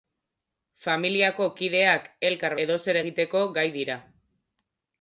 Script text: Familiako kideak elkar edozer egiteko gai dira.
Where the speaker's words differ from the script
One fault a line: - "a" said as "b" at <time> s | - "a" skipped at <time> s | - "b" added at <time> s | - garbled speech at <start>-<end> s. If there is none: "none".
none